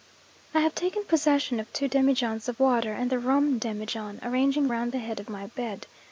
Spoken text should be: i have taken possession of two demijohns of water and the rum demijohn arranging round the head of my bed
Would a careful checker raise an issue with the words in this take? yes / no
no